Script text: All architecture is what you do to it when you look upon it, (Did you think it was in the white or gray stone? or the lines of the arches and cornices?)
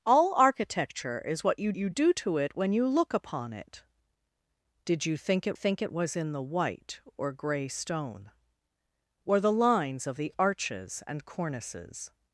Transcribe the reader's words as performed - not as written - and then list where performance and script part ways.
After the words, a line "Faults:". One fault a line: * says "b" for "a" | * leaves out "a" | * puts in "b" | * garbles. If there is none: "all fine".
All architecture is what you you do to it when you look upon it, (Did you think it think it was in the white or gray stone? or the lines of the arches and cornices?)
Faults:
* puts in "you"
* puts in "think it"